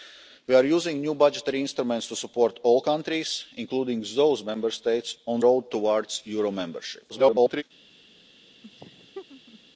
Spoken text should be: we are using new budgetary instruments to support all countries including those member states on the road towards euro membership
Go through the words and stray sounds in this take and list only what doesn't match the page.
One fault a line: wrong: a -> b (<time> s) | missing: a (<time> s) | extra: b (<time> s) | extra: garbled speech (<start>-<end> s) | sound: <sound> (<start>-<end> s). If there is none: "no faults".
missing: the (5.4 s)
extra: garbled speech (7.1-7.6 s)
sound: laugh (8.6-9.6 s)